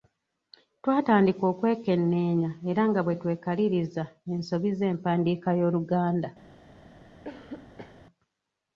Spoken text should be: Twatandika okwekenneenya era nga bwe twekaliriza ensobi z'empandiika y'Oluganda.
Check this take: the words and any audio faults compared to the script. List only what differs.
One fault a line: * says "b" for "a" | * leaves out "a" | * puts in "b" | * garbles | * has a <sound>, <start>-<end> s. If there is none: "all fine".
* has a cough, 7.2-8.0 s